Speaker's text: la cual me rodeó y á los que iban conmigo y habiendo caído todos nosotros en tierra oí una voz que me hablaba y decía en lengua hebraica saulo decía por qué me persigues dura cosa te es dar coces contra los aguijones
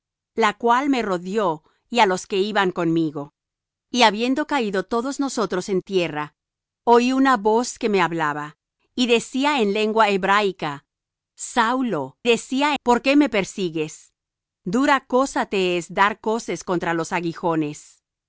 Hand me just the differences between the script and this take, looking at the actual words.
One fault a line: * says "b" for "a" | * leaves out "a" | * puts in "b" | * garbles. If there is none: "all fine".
all fine